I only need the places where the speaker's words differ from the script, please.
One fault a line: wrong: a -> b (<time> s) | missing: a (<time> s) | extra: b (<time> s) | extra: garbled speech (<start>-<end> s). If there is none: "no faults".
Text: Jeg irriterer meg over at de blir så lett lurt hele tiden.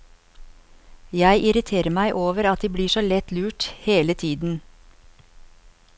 no faults